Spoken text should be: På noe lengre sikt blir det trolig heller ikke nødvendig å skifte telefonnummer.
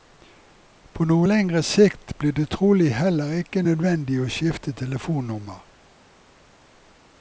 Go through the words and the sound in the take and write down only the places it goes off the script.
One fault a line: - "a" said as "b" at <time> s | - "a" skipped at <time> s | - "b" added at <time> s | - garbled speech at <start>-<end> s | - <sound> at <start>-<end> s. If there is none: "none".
none